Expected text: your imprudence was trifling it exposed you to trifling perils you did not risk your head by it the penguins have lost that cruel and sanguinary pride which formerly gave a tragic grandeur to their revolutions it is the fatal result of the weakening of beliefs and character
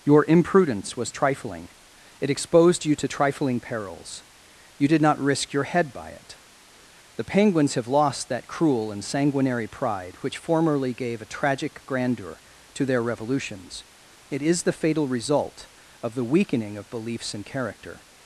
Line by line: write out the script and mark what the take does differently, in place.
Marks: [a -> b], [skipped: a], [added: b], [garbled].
your imprudence was trifling it exposed you to trifling perils you did not risk your head by it the penguins have lost that cruel and sanguinary pride which formerly gave a tragic grandeur to their revolutions it is the fatal result of the weakening of beliefs and character